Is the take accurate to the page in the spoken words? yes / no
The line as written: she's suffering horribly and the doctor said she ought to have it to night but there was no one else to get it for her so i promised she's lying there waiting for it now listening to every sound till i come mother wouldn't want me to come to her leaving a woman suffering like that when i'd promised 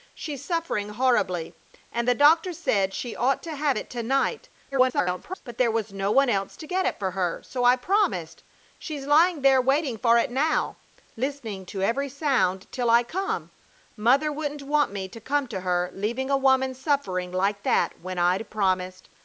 no